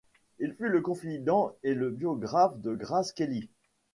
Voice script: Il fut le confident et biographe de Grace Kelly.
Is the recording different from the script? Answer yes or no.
yes